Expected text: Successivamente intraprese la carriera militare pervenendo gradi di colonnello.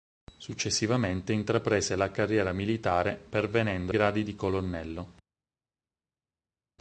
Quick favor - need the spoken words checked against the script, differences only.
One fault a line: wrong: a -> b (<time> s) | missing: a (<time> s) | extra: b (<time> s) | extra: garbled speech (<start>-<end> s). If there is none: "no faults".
no faults